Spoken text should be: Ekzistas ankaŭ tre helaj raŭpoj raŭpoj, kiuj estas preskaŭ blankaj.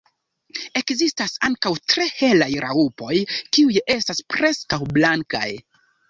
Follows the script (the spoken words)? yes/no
no